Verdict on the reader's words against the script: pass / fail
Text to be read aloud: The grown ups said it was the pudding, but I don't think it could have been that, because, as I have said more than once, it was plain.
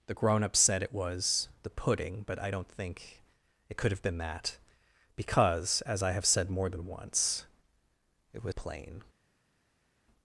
pass